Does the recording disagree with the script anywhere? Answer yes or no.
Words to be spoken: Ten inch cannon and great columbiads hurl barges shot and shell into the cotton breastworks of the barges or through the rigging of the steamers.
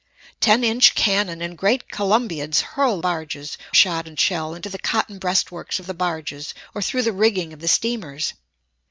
no